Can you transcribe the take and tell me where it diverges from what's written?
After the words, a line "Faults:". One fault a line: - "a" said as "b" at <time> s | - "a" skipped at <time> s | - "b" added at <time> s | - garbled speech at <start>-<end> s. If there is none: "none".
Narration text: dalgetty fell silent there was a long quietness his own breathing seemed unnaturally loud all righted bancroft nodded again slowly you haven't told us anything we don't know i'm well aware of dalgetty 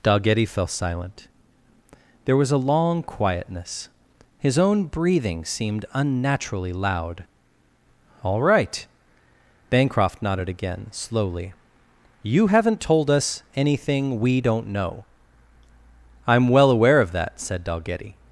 dalgetty fell silent there was a long quietness his own breathing seemed unnaturally loud all right bancroft nodded again slowly you haven't told us anything we don't know i'm well aware of that said dalgetty
Faults:
- "righted" said as "right" at 8.4 s
- "that said" added at 17.1 s